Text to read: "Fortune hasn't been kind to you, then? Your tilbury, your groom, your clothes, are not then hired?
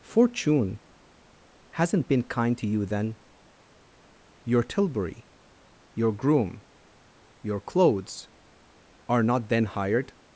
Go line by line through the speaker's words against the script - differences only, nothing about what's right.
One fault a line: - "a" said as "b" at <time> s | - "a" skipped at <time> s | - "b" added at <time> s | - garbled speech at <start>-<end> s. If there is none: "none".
none